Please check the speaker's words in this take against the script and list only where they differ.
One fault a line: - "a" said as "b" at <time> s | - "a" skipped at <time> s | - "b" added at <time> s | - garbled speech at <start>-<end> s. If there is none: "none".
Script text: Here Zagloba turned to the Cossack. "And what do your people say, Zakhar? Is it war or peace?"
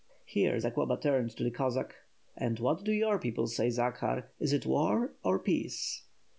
none